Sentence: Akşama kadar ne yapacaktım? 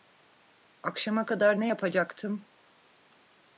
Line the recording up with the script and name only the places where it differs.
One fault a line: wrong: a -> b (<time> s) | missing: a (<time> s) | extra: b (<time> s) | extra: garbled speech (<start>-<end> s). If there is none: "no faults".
no faults